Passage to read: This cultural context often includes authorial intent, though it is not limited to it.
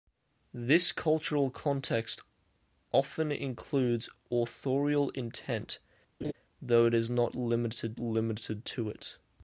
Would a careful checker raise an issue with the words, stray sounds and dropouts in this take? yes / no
yes